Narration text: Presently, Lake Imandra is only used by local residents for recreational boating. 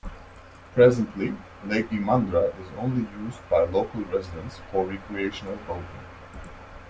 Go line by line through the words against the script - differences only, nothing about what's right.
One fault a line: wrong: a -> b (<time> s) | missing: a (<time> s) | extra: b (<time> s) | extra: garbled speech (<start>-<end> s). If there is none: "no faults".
no faults